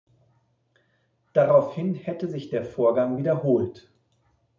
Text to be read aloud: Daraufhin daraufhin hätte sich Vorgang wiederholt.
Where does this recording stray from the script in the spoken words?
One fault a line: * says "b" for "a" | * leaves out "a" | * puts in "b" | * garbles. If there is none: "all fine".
* leaves out "daraufhin"
* puts in "der"